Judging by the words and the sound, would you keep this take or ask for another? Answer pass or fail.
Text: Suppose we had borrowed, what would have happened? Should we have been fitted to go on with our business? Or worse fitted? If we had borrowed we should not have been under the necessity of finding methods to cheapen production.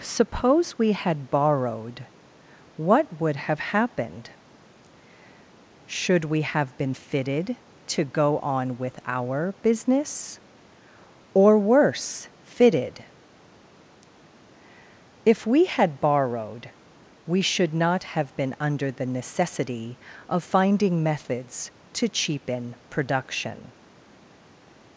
pass